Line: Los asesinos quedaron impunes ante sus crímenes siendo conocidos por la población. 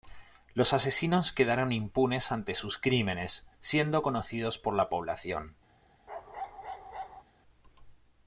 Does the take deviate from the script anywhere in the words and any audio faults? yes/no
yes